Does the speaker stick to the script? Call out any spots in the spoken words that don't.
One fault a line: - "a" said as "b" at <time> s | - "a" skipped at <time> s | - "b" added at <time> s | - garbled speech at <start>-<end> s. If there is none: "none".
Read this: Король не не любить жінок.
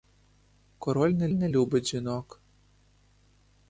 none